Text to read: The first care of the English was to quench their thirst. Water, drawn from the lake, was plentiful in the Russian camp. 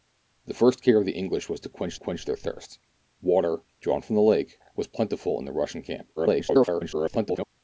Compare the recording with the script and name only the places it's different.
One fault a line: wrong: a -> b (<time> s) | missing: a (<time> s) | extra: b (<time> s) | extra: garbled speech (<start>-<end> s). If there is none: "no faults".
extra: quench (2.0 s)
extra: garbled speech (6.2-7.5 s)